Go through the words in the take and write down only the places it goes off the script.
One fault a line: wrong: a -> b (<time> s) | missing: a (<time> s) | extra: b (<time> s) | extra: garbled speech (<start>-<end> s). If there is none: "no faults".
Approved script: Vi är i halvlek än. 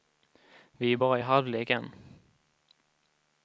extra: bara (0.9 s)